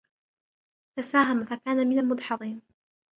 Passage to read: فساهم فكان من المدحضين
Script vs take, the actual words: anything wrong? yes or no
no